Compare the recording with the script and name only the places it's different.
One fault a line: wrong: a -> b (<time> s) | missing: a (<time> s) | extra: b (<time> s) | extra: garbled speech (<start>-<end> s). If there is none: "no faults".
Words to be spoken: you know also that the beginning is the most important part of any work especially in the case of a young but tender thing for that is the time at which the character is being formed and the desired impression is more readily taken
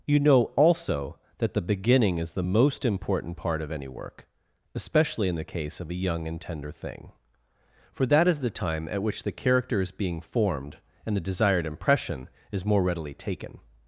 wrong: but -> and (6.3 s)